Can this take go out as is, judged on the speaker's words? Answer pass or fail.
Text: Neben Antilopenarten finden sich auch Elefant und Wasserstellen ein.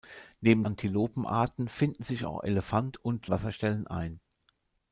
pass